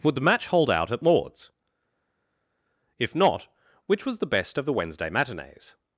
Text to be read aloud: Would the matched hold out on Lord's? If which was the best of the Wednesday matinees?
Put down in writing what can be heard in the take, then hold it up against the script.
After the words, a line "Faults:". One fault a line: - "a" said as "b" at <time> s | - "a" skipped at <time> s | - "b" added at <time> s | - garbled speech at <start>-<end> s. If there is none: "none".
Would the match hold out at Lord's? If not, which was the best of the Wednesday matinees?
Faults:
- "matched" said as "match" at 0.2 s
- "on" said as "at" at 0.9 s
- "not" added at 3.1 s